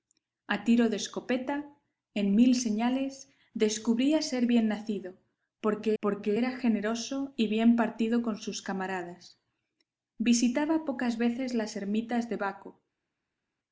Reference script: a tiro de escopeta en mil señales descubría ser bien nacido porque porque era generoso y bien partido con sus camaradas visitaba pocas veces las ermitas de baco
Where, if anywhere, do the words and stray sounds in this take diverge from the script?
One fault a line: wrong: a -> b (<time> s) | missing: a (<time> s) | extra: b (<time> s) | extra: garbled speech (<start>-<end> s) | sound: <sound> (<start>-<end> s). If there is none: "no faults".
no faults